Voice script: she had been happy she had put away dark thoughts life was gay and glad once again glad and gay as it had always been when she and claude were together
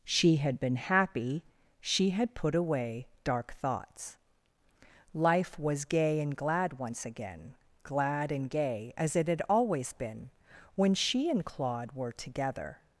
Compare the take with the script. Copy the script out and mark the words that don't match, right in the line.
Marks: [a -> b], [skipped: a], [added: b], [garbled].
she had been happy she had put away dark thoughts life was gay and glad once again glad and gay as it had always been when she and claude were together